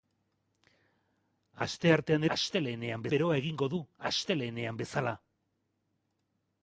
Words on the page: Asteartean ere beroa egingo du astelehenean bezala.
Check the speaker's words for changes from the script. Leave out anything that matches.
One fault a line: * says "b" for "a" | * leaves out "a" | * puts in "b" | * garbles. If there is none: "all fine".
* says "astelehenean" for "ere"